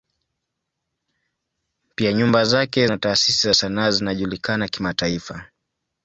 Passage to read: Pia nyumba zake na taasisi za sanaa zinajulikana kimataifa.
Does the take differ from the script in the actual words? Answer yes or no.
no